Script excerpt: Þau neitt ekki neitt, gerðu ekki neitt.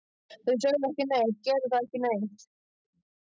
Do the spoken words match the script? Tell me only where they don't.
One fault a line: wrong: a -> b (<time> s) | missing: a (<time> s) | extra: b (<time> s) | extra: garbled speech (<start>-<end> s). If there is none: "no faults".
wrong: neitt -> sögðu (0.6 s)